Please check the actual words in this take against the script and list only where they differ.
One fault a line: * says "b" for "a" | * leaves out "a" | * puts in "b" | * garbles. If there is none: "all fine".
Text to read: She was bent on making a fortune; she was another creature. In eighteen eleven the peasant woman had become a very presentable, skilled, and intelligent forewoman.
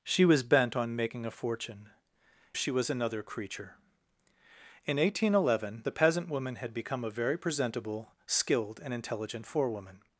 all fine